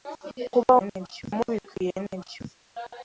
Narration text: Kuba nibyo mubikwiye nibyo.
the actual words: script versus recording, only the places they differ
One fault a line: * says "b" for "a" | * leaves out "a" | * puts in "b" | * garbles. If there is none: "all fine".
all fine